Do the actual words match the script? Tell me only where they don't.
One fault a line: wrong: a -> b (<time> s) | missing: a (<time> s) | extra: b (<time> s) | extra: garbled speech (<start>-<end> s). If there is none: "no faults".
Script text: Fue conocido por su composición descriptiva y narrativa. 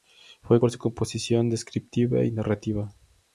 missing: conocido (0.6 s)